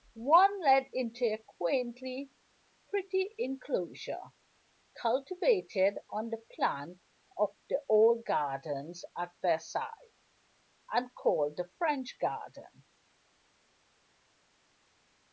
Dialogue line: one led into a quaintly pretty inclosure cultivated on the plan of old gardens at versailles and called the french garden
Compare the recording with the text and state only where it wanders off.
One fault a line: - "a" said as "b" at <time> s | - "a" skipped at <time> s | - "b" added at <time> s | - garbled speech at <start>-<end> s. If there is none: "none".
- "the" added at 7.7 s